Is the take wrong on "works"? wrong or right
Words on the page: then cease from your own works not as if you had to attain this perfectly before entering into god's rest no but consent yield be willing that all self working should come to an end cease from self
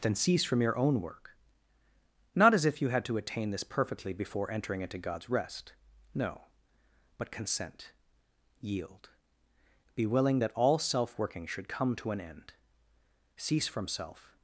wrong